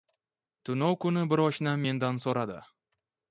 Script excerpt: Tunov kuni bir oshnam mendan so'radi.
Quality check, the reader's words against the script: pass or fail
pass